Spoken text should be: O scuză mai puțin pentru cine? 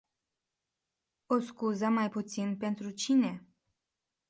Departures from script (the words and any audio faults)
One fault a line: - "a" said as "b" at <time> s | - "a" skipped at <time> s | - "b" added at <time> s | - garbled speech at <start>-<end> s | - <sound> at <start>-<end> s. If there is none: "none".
none